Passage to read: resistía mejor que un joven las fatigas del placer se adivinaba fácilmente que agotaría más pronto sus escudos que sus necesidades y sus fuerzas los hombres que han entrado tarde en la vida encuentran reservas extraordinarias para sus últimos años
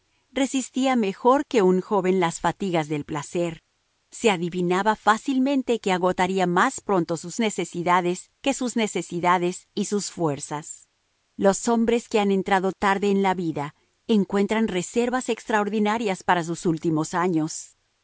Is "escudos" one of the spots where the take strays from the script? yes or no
yes